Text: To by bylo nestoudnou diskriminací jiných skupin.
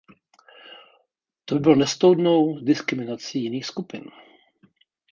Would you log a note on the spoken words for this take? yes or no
no